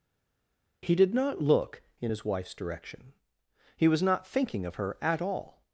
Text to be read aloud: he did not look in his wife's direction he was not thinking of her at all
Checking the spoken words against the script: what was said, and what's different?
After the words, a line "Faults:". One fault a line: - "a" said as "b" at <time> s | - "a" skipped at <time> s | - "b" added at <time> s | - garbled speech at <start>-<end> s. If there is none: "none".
he did not look in his wife's direction he was not thinking of her at all
Faults:
none